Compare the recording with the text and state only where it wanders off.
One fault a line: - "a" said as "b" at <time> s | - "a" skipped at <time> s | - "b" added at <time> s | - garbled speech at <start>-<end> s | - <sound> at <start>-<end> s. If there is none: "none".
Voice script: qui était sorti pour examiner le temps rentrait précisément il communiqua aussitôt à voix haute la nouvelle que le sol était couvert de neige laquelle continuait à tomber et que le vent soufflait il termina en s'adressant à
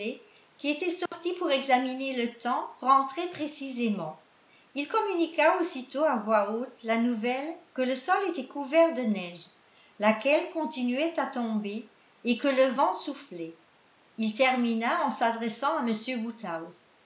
- dropout at 1.1-1.1 s